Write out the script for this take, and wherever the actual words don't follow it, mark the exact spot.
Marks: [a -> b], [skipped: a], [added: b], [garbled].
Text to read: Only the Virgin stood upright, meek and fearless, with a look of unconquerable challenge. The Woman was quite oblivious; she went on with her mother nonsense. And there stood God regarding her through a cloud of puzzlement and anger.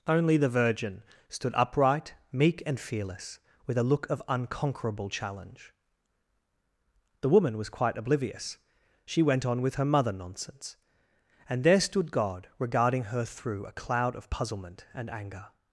Only the Virgin stood upright, meek and fearless, with a look of unconquerable challenge. The Woman was quite oblivious; she went on with her mother nonsense. And there stood God regarding her through a cloud of puzzlement and anger.